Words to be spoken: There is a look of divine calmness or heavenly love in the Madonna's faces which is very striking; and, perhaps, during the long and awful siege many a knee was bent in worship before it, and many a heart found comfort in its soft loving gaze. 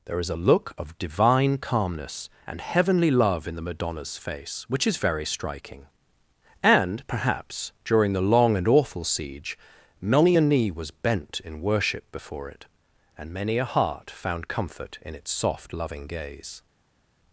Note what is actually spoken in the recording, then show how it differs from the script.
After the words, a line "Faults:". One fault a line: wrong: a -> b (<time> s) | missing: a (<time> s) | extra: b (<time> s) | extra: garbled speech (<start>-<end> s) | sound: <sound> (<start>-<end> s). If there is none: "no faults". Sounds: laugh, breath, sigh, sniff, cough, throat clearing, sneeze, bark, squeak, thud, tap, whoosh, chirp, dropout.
There is a look of divine calmness and heavenly love in the Madonna's face which is very striking; and, perhaps, during the long and awful siege many a knee was bent in worship before it, and many a heart found comfort in its soft loving gaze.
Faults:
wrong: or -> and (2.5 s)
wrong: faces -> face (4.2 s)